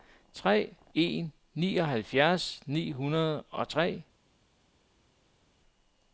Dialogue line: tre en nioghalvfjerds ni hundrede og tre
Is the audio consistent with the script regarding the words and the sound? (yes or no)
yes